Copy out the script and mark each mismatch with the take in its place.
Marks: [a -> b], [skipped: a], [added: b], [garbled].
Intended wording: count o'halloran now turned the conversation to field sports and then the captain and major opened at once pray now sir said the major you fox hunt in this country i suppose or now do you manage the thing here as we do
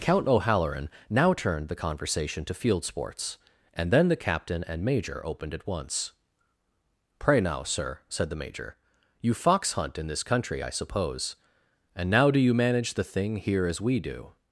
count o'halloran now turned the conversation to field sports and then the captain and major opened at once pray now sir said the major you fox hunt in this country i suppose [or -> and] now do you manage the thing here as we do